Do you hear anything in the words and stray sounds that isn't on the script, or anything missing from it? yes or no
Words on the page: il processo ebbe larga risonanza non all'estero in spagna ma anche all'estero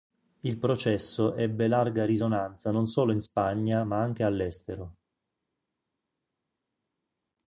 yes